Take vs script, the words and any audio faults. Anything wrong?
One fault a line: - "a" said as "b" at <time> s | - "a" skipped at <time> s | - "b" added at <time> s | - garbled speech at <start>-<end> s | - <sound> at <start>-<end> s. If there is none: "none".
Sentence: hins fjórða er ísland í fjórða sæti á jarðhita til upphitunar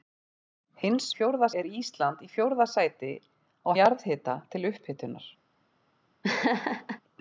- laugh at 6.2-7.0 s